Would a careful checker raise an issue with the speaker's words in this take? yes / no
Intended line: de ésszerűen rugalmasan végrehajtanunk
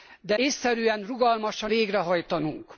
no